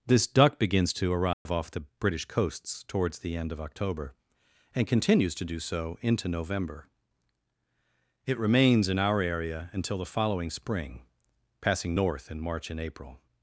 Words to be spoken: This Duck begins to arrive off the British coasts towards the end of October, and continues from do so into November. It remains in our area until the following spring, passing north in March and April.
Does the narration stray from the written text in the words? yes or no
yes